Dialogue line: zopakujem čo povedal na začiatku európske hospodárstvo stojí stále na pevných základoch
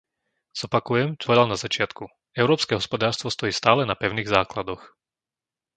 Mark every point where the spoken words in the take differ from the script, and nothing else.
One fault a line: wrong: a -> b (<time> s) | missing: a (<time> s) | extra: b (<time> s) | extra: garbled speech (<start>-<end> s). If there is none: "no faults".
no faults